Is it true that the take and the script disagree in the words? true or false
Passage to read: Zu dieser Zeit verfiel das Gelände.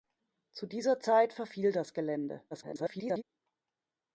true